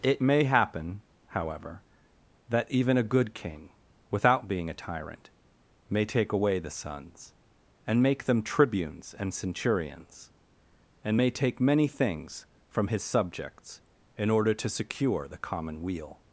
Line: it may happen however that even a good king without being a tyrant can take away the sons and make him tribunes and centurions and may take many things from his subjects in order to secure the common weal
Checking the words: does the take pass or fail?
fail